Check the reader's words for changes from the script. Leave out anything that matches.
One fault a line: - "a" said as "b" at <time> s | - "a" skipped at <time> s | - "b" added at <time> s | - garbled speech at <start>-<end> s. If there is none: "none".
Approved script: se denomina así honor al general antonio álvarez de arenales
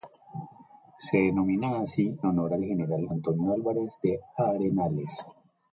none